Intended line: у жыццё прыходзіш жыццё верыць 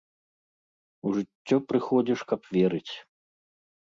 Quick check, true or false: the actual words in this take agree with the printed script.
false